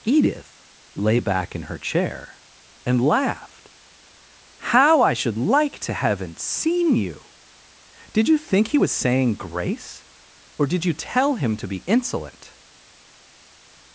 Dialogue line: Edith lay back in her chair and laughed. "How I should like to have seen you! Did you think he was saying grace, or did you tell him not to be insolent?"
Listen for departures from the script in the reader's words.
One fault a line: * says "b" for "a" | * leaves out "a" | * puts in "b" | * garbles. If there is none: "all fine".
* says "haven't" for "have"
* leaves out "not"